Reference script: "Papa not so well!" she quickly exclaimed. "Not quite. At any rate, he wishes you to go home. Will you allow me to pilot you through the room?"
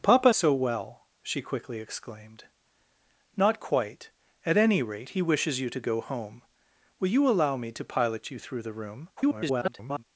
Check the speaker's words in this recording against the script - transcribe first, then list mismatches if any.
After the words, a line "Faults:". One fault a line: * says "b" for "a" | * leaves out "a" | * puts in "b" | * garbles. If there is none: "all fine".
"Papa so well!" she quickly exclaimed. "Not quite. At any rate, he wishes you to go home. Will you allow me to pilot you through the room?" [garbled]
Faults:
* leaves out "not"
* garbles